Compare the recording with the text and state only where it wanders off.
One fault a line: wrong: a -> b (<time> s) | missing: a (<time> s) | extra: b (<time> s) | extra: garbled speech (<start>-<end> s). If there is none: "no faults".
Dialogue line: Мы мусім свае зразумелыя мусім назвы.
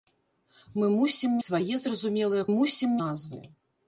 no faults